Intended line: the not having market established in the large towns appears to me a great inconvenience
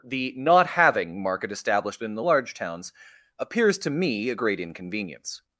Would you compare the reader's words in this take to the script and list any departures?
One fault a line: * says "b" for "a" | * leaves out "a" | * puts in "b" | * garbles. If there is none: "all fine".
all fine